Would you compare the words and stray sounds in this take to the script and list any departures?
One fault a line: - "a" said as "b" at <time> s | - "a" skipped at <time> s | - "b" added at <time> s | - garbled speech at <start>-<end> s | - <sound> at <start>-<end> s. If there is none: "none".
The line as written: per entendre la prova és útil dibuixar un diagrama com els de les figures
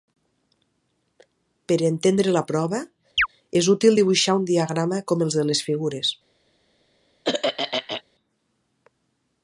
- chirp at 3.2-3.3 s
- throat clearing at 7.2-8.0 s